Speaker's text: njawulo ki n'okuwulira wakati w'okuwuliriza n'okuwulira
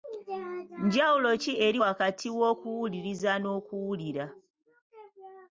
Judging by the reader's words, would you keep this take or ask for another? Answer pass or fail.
fail